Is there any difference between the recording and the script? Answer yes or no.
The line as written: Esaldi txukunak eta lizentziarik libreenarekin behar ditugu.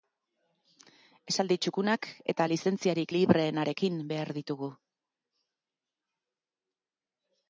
no